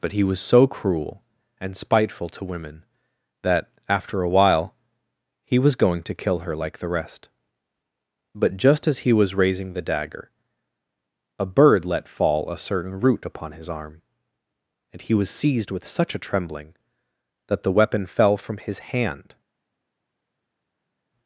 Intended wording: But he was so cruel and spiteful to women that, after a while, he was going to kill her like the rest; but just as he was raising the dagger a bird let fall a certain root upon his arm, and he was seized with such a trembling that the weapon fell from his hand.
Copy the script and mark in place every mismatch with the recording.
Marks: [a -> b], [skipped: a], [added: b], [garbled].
But he was so cruel and spiteful to women that, after a while, he was going to kill her like the rest; but just as he was raising the dagger a bird let fall a certain root upon his arm, and he was seized with such a trembling that the weapon fell from his hand.